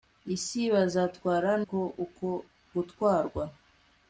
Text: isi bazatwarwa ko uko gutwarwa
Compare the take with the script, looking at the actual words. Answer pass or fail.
pass